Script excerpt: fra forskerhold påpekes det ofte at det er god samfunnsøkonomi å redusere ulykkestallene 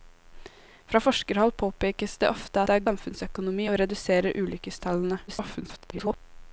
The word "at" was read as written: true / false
false